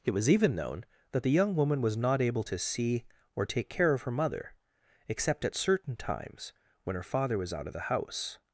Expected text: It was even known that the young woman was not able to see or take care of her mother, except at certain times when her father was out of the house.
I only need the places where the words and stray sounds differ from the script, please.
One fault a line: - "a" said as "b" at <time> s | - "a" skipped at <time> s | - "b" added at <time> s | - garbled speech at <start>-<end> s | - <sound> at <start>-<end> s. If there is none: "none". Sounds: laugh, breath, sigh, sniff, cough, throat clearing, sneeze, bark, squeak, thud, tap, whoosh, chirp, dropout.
none